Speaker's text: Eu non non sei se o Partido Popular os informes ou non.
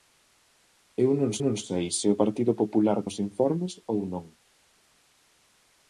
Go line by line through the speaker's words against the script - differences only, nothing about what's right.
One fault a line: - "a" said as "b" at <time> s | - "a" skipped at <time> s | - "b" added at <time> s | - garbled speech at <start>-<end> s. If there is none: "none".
none